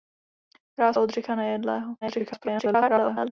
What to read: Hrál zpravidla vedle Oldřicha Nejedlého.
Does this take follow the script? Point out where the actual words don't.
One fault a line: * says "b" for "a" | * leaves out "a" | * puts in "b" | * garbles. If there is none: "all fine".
* leaves out "zpravidla vedle"
* garbles